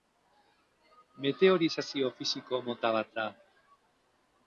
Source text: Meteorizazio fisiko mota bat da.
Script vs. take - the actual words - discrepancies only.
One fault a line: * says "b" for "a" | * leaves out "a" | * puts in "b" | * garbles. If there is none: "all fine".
all fine